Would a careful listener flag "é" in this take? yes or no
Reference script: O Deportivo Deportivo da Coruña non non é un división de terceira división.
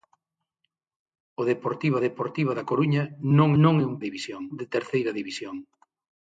no